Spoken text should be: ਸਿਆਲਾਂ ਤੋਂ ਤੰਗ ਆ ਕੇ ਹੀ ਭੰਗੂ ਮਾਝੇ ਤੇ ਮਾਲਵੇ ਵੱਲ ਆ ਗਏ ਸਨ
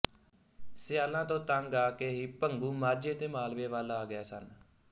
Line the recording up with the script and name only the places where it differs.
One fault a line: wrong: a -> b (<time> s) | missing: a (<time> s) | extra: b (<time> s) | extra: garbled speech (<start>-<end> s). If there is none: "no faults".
no faults